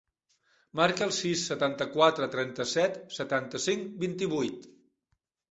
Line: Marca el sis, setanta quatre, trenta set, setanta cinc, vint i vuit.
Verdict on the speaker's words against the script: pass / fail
pass